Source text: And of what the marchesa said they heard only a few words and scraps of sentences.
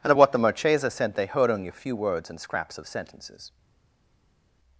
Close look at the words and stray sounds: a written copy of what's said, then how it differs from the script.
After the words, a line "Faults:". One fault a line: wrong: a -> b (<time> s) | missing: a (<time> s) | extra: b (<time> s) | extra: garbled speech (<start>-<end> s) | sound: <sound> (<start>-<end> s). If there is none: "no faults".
And of what the marchesa sent they heard only a few words and scraps of sentences.
Faults:
wrong: said -> sent (0.9 s)